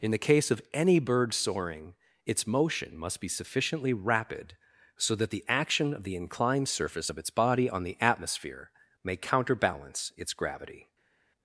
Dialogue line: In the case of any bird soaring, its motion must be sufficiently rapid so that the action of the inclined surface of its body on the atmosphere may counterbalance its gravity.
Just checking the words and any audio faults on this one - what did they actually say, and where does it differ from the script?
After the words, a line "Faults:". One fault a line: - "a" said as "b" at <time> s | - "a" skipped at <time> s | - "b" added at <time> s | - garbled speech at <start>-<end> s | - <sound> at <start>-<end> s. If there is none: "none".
In the case of any bird soaring, its motion must be sufficiently rapid so that the action of the inclined surface of its body on the atmosphere may counterbalance its gravity.
Faults:
none